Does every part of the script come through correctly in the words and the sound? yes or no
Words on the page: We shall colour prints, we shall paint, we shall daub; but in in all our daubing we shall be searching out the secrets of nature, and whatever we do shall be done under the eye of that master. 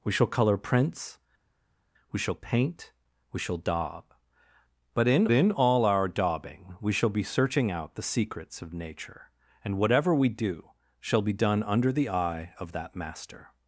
yes